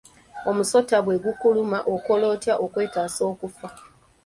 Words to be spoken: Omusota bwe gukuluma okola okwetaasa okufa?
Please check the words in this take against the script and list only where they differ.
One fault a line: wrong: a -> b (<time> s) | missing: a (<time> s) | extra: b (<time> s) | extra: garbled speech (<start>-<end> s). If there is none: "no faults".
extra: otya (2.3 s)